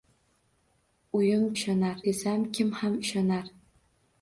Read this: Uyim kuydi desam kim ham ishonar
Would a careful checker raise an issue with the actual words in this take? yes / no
yes